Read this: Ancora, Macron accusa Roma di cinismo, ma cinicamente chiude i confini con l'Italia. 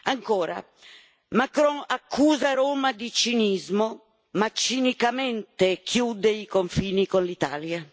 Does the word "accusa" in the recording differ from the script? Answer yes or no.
no